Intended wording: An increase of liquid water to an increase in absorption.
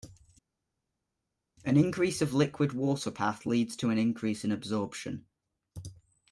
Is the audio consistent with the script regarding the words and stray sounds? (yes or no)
no